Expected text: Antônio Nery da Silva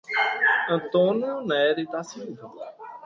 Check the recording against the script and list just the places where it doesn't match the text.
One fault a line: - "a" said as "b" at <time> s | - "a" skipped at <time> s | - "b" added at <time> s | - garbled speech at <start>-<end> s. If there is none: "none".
none